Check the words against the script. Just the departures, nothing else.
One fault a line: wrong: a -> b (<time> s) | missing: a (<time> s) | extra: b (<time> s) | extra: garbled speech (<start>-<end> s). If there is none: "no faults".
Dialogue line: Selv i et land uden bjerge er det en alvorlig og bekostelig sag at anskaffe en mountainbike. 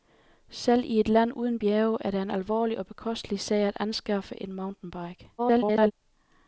extra: garbled speech (5.4-5.9 s)